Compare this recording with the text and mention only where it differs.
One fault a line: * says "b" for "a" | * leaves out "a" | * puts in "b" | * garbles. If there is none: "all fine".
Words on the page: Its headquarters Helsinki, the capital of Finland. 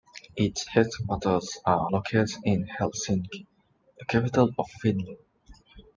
* puts in "are located in"